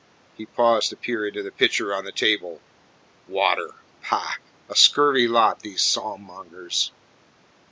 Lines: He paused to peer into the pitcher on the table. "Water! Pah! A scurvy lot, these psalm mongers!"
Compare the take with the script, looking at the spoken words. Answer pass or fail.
pass